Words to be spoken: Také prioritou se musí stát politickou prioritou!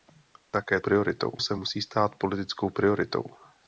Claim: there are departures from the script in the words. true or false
false